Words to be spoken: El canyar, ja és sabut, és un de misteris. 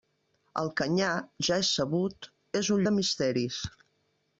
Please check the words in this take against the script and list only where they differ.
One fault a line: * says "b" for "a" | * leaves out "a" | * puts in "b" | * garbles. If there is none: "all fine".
all fine